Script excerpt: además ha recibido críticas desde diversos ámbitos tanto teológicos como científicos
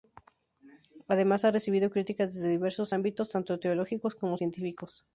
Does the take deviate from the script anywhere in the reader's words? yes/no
no